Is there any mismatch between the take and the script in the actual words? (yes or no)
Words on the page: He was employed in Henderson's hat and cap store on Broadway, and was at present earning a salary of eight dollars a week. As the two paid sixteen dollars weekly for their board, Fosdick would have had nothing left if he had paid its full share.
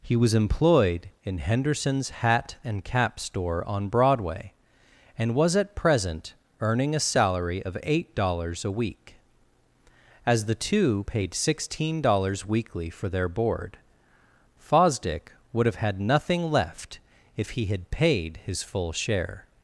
yes